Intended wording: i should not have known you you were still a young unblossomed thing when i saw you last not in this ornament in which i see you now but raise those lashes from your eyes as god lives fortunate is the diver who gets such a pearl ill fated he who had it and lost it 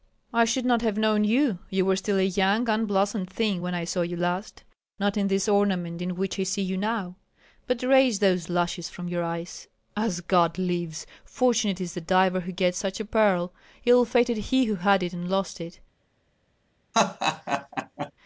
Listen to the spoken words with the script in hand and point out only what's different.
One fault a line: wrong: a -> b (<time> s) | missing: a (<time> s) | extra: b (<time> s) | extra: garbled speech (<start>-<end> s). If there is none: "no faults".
no faults